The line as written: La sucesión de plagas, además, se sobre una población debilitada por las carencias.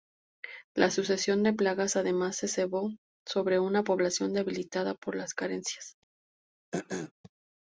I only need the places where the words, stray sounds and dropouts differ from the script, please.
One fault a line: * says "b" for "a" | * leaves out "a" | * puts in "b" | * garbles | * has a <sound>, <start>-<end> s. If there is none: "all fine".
* puts in "cebó"
* has a throat clearing, 6.7-7.1 s